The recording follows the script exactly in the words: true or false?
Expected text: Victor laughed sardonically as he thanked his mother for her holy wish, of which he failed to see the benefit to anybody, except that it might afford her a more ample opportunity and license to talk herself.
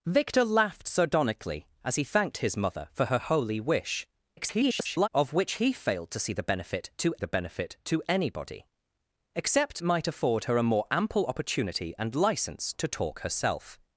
false